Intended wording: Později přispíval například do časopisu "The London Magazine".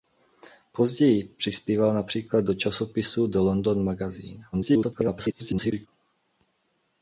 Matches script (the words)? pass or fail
fail